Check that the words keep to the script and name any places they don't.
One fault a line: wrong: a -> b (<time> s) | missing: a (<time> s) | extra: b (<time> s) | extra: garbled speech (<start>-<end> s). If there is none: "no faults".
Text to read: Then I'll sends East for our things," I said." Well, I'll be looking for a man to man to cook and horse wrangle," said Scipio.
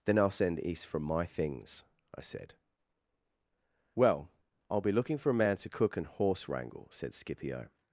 wrong: sends -> send (0.3 s)
wrong: our -> my (1.0 s)
missing: man to (5.7 s)